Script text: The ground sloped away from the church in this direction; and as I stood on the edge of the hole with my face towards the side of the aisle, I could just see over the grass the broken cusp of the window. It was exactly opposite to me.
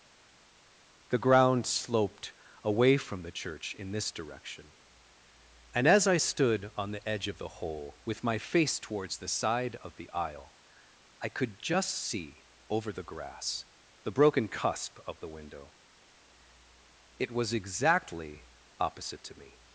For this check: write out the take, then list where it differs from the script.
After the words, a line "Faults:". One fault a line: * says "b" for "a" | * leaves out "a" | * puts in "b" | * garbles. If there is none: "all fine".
The ground sloped away from the church in this direction; and as I stood on the edge of the hole with my face towards the side of the aisle, I could just see over the grass the broken cusp of the window. It was exactly opposite to me.
Faults:
all fine